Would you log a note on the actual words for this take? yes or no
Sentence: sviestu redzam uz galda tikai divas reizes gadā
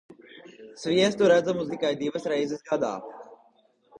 yes